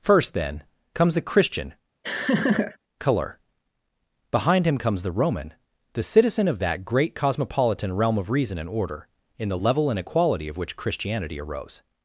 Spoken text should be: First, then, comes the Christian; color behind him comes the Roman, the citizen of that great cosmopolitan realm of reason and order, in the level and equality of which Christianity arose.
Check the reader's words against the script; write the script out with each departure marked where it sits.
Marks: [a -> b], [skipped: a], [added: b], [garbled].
First, then, comes the Christian; color behind him comes the Roman, the citizen of that great cosmopolitan realm of reason and order, in the level and equality of which Christianity arose.